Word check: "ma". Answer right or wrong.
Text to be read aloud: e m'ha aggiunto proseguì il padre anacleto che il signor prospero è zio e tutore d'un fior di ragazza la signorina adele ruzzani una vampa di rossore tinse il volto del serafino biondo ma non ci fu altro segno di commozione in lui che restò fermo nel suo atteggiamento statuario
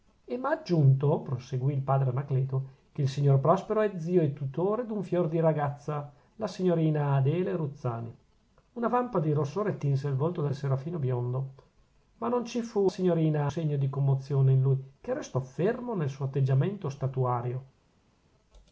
right